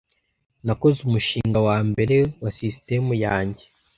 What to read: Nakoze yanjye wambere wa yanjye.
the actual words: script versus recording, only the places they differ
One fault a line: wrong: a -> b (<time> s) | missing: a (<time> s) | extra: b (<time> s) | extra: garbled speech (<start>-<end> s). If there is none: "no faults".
wrong: yanjye -> umushinga (1.1 s)
extra: sisitemu (2.5 s)